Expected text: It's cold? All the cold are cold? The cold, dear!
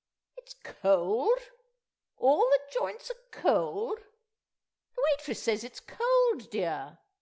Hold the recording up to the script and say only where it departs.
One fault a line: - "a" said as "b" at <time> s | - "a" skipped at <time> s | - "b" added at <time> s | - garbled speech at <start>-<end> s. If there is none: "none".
- "cold" said as "joints" at 2.7 s
- "waitress says it's" added at 5.2 s